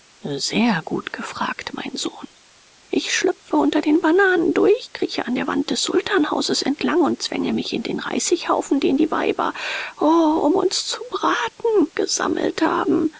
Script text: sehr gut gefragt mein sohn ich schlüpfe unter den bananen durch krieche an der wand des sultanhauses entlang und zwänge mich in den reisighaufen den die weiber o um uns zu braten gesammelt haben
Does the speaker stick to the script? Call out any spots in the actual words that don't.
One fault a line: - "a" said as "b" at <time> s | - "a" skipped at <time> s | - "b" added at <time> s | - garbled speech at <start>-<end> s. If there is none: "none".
none